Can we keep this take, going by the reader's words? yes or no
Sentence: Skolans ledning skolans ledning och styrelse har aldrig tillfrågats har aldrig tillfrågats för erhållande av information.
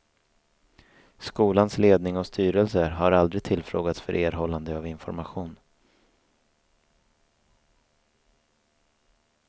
no